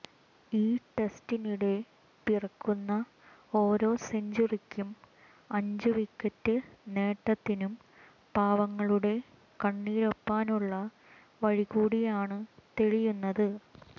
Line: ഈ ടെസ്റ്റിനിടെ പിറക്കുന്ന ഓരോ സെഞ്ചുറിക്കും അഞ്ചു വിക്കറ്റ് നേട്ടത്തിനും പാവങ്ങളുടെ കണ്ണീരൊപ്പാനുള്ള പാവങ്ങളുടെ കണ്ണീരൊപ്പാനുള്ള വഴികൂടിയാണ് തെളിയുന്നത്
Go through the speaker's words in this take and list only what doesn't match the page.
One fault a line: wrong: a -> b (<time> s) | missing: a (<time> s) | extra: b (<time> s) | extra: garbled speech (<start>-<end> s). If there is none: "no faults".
missing: പാവങ്ങളുടെ കണ്ണീരൊപ്പാനുള്ള (10.7 s)